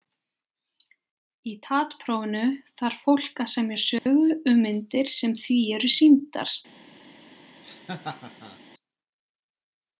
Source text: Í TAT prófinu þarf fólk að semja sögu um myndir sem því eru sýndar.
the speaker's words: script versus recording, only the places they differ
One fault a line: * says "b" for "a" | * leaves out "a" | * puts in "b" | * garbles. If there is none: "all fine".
all fine